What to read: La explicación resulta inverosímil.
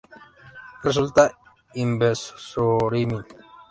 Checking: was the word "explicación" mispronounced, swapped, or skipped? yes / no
yes